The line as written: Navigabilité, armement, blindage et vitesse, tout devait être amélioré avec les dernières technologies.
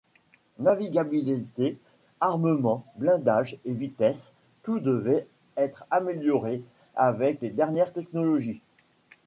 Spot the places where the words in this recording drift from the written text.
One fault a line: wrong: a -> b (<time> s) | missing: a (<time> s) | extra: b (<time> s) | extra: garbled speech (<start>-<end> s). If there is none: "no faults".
no faults